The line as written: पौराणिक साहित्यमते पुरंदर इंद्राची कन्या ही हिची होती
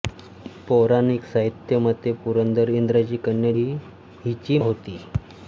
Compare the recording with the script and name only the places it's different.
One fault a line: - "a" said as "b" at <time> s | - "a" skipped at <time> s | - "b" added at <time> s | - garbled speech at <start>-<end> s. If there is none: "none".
none